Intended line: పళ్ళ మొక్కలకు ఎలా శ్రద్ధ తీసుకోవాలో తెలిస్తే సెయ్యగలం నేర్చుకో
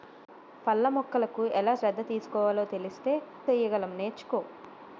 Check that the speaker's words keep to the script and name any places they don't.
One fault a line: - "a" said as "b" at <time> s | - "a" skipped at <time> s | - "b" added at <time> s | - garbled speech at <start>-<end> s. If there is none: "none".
none